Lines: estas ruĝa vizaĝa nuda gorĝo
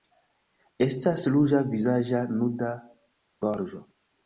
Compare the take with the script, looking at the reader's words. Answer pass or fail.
pass